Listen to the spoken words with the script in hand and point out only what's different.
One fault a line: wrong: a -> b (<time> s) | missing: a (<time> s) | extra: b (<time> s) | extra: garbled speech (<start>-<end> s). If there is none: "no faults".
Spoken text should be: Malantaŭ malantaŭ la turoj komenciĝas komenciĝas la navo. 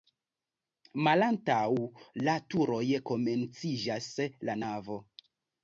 missing: malantaŭ (1.6 s)
missing: komenciĝas (4.1 s)